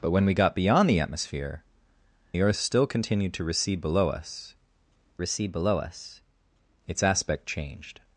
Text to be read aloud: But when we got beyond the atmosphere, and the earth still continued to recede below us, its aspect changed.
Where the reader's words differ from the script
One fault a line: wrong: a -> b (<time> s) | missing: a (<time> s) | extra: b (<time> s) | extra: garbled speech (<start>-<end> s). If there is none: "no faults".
missing: and (1.6 s)
extra: recede below us (5.2 s)